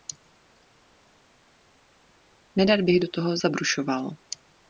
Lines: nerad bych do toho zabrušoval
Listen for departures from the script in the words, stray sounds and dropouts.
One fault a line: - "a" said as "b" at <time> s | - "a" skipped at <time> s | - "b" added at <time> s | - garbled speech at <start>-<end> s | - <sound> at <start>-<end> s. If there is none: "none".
none